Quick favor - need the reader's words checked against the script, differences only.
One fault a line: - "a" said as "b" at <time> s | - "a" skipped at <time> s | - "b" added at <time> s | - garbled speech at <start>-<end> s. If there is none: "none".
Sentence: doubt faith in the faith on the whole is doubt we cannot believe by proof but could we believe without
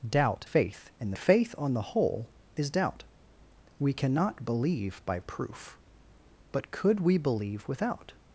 none